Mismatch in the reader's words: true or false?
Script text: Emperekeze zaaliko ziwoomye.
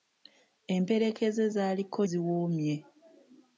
false